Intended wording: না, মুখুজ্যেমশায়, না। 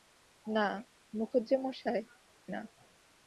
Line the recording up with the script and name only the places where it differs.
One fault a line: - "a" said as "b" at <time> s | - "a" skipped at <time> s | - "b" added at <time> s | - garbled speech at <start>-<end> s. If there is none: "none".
none